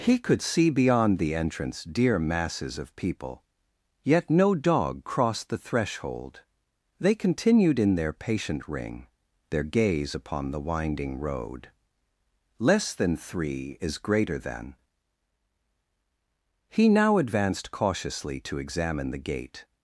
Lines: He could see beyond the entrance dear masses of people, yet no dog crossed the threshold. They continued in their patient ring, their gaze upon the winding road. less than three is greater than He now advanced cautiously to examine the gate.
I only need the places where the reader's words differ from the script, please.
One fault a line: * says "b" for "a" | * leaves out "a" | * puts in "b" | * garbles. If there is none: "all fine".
all fine